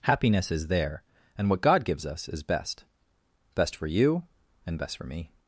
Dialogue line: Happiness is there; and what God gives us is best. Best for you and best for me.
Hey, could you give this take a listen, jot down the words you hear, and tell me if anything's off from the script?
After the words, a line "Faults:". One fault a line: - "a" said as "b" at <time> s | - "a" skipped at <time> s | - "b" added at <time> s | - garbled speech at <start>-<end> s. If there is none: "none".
Happiness is there; and what God gives us is best. Best for you and best for me.
Faults:
none